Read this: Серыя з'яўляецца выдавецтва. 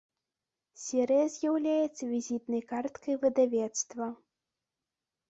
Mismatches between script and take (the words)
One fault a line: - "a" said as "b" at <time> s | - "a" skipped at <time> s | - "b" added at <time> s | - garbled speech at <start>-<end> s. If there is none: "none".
- "візітнай карткай" added at 2.1 s